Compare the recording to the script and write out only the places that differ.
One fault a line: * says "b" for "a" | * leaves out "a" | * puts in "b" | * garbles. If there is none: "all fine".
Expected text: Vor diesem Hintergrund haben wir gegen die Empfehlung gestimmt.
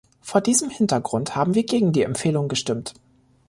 all fine